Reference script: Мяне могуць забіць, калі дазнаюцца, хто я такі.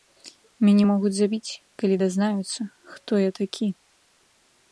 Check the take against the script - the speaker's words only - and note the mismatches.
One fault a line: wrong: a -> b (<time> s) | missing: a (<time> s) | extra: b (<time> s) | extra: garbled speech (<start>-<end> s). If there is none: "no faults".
no faults